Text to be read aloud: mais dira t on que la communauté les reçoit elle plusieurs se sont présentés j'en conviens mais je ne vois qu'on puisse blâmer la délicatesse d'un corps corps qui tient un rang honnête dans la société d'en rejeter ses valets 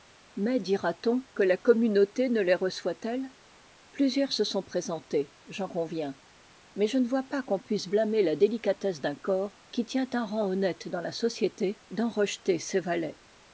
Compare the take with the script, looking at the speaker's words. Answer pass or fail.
fail